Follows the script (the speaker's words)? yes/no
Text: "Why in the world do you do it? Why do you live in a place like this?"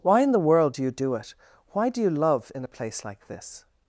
no